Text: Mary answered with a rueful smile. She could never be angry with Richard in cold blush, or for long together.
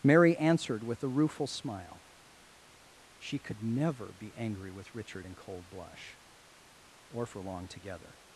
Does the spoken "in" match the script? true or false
true